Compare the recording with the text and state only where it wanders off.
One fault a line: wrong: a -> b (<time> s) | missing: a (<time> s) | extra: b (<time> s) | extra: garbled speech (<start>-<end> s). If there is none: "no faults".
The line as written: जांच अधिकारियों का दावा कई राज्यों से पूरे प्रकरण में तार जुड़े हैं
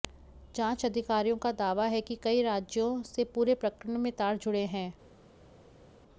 extra: है कि (1.9 s)